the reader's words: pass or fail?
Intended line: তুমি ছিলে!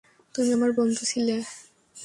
fail